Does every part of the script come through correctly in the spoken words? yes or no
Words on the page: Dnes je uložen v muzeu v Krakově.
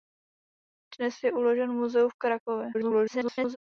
no